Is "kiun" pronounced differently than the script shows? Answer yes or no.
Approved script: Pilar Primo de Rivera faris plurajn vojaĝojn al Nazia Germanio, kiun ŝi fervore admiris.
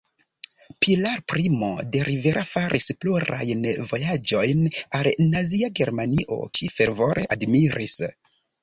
yes